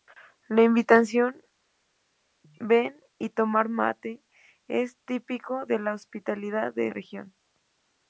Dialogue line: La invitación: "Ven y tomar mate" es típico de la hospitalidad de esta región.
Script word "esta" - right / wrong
wrong